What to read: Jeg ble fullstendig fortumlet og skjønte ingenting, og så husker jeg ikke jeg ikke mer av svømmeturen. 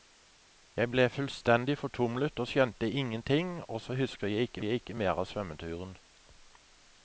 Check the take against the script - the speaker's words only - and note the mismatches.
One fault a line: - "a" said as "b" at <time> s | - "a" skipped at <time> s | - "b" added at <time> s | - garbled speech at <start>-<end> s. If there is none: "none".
none